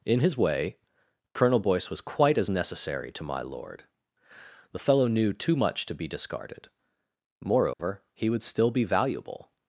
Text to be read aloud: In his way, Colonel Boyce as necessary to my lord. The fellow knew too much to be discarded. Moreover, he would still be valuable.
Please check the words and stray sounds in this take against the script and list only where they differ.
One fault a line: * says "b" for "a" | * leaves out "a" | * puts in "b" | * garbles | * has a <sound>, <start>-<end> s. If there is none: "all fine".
* puts in "was quite"
* has a dropout, 7.7-7.8 s